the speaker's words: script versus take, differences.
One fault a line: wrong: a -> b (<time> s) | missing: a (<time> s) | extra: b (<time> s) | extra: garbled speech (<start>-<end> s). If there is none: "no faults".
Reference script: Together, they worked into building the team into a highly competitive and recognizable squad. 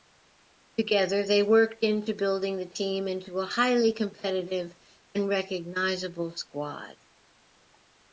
no faults